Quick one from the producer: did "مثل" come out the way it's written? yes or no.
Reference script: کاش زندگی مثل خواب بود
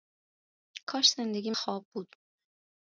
no